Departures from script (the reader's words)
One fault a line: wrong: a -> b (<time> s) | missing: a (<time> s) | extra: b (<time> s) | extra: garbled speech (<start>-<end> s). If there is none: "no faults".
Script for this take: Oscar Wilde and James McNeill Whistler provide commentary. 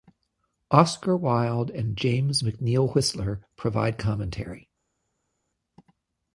no faults